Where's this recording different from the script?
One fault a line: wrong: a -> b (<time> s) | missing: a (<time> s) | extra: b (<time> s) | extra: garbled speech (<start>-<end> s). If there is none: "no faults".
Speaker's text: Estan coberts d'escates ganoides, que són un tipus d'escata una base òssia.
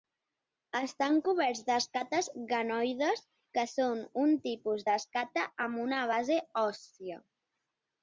extra: amb (5.7 s)